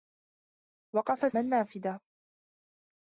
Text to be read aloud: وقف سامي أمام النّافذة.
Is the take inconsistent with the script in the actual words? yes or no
yes